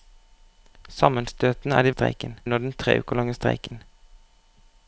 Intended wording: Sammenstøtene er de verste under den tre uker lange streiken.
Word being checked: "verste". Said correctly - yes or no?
no